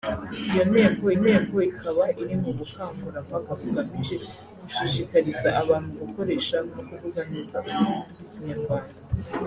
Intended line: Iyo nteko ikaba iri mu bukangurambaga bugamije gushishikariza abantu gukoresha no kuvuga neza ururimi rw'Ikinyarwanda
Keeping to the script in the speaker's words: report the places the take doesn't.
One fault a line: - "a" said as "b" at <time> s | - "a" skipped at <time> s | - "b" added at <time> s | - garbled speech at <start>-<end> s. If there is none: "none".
- "nteko" added at 1.2 s